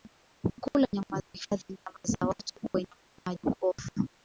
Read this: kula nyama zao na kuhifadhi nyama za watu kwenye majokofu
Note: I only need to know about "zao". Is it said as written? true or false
false